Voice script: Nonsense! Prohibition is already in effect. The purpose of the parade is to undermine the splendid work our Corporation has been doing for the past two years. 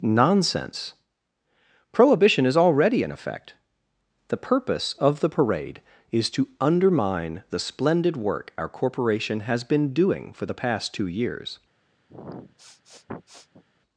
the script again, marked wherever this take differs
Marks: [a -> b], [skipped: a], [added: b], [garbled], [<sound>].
Nonsense! Prohibition is already in effect. The purpose of the parade is to undermine the splendid work our Corporation has been doing for the past two years. [sniff]